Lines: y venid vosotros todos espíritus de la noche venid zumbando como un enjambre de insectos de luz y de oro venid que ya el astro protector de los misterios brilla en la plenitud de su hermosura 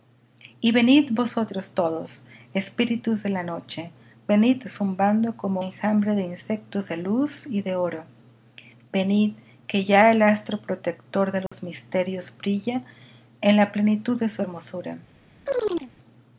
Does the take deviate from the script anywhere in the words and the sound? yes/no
yes